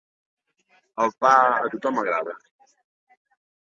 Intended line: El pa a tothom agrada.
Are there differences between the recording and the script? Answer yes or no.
no